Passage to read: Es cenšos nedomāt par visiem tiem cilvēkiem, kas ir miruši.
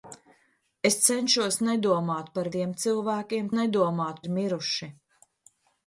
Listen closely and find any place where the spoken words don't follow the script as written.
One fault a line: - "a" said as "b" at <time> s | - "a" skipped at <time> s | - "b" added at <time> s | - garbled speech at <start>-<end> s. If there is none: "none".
- "visiem" skipped at 2.5 s
- "kas" said as "nedomāt" at 3.6 s